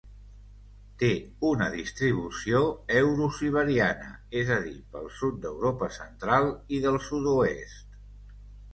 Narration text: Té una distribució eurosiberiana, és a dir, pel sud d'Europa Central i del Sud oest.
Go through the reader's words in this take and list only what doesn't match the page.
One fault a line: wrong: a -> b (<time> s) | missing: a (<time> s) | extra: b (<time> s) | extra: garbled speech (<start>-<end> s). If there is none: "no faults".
no faults